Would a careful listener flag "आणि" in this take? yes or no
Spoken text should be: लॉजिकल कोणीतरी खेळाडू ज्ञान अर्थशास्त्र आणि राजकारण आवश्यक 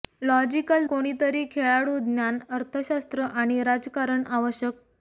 no